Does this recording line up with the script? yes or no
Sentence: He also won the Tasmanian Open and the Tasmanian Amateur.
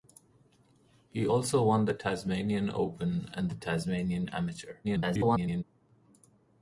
no